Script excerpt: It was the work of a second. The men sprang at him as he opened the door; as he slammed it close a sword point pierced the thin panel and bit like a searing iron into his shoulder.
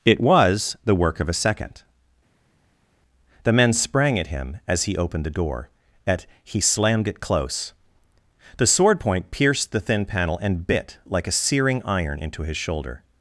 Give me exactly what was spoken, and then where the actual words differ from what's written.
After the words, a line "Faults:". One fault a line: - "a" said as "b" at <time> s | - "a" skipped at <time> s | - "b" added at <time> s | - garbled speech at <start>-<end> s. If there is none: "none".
It was the work of a second. The men sprang at him as he opened the door; at he slammed it close the sword point pierced the thin panel and bit like a searing iron into his shoulder.
Faults:
- "as" said as "at" at 6.1 s
- "a" said as "the" at 8.6 s